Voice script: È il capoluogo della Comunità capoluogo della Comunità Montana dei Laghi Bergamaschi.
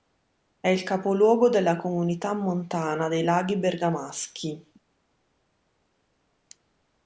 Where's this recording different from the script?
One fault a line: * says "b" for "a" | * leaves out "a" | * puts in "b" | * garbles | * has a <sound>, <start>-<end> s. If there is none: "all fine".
* leaves out "capoluogo della Comunità"